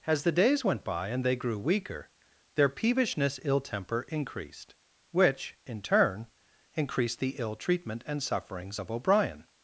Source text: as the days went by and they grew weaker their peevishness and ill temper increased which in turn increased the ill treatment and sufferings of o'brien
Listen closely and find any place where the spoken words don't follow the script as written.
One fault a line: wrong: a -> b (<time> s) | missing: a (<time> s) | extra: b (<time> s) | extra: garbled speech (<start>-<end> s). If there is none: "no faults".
missing: and (3.4 s)